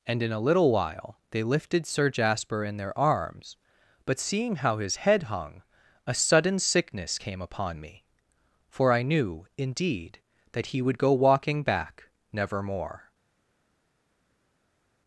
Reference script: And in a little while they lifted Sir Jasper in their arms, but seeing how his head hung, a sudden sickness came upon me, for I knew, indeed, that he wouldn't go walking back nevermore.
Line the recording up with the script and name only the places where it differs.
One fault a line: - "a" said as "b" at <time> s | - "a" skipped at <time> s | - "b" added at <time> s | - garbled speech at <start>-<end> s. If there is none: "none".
- "wouldn't" said as "would" at 10.8 s